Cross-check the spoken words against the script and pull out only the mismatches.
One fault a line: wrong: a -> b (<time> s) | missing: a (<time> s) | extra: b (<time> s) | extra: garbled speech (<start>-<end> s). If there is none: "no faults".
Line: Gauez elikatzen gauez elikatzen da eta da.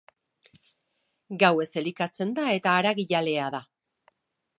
missing: gauez elikatzen (2.3 s)
extra: haragijalea (2.8 s)